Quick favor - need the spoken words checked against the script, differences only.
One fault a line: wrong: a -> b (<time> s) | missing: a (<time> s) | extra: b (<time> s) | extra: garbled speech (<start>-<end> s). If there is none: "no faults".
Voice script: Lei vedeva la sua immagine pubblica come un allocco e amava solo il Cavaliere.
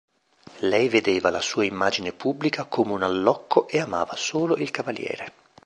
no faults